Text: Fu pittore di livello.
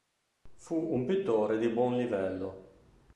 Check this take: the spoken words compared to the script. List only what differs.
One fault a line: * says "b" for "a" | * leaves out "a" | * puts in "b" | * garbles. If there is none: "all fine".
* puts in "un"
* puts in "buon"